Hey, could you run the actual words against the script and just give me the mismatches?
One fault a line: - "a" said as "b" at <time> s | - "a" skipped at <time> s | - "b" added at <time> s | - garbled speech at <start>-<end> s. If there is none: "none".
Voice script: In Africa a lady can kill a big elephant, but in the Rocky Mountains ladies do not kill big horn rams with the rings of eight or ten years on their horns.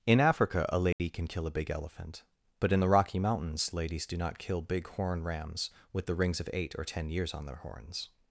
none